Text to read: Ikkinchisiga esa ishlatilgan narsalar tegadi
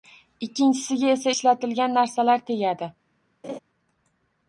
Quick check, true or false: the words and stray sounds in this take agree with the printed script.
false